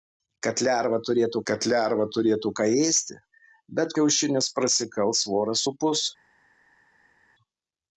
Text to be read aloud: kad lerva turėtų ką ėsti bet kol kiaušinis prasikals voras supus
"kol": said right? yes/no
no